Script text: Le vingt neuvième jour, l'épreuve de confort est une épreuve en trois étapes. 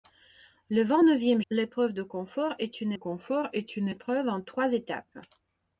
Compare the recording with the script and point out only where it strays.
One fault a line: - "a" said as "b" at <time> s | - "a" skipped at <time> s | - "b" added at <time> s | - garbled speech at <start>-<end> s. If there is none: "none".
- "jour" skipped at 1.4 s
- "confort est une" added at 2.9 s